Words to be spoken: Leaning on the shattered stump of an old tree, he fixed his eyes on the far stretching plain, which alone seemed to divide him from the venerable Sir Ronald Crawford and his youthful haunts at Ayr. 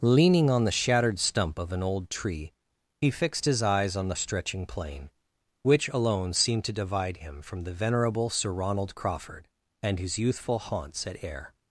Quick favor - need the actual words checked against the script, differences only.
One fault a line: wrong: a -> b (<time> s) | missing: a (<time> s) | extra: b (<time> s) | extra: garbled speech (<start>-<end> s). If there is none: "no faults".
missing: far (4.2 s)